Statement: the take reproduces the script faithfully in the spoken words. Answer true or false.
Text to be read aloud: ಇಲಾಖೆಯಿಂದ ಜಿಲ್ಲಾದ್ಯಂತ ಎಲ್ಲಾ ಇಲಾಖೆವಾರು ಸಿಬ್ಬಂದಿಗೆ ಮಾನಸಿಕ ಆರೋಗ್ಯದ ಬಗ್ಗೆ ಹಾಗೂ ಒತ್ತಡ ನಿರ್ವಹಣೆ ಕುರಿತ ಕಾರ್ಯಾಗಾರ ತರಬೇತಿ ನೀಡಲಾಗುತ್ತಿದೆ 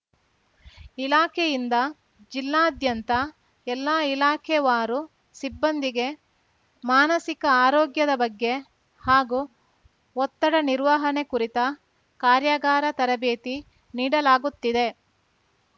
true